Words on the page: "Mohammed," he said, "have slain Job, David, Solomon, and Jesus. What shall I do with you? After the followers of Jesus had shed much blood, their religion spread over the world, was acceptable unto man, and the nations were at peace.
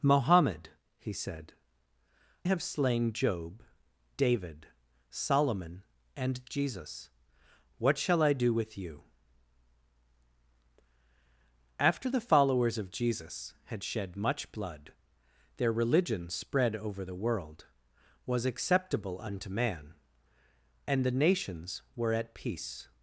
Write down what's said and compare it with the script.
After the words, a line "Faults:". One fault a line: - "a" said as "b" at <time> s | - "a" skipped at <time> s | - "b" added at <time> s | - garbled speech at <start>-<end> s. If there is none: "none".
"Mohammed," he said, "have slain Job, David, Solomon, and Jesus. What shall I do with you? After the followers of Jesus had shed much blood, their religion spread over the world, was acceptable unto man, and the nations were at peace.
Faults:
none